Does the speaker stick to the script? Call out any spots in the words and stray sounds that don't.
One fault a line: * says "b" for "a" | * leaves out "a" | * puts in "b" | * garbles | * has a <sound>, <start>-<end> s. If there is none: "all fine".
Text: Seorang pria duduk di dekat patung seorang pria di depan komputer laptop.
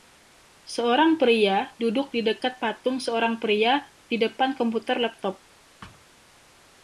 * has a thud, 5.8-6.1 s